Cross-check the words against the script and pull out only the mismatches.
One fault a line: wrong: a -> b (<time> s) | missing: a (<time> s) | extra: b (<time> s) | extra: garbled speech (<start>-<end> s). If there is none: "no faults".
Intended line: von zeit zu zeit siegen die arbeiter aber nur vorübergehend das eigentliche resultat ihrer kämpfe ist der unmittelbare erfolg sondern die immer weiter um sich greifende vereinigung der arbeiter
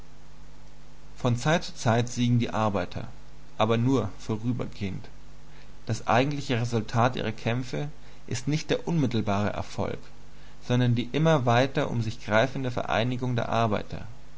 extra: nicht (8.5 s)